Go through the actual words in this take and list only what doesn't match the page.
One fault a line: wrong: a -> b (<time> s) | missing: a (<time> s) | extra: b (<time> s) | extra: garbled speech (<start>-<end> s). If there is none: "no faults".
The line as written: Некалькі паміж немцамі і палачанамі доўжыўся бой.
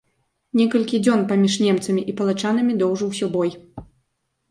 extra: дзён (1.1 s)